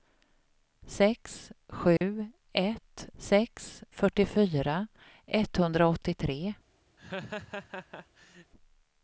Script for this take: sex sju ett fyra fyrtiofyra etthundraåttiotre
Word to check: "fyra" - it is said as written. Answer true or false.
false